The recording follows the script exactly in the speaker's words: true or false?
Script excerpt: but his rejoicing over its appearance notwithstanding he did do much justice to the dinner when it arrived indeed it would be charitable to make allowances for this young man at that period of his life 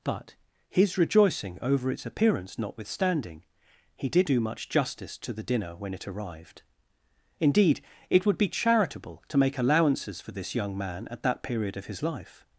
true